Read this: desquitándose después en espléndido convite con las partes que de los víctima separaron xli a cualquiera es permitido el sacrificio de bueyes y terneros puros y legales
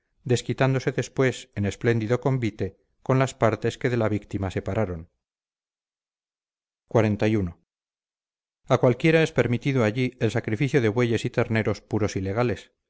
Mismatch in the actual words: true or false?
true